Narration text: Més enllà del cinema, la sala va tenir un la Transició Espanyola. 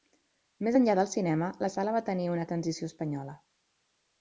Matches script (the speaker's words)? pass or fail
pass